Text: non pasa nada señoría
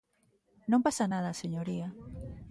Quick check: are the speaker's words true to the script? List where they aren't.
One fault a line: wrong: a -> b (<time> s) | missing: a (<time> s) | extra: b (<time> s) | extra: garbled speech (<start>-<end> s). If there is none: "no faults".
no faults